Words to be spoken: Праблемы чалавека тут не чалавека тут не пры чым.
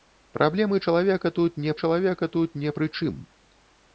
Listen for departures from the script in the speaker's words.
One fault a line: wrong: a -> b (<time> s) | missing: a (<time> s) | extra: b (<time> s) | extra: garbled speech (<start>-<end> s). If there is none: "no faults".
no faults